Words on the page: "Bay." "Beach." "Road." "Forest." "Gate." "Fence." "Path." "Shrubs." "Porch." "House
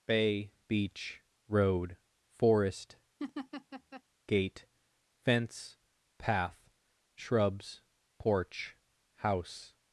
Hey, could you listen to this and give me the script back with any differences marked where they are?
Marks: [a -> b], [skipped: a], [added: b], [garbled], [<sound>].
"Bay." "Beach." "Road." "Forest." [laugh] "Gate." "Fence." "Path." "Shrubs." "Porch." "House